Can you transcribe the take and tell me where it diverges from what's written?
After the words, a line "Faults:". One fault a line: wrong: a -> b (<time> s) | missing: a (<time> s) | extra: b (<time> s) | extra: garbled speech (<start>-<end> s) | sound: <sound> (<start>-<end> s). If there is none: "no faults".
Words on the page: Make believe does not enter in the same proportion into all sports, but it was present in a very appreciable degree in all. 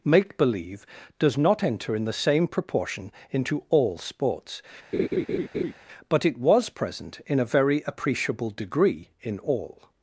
Make believe does not enter in the same proportion into all sports, but it was present in a very appreciable degree in all.
Faults:
sound: laugh (4.9-5.7 s)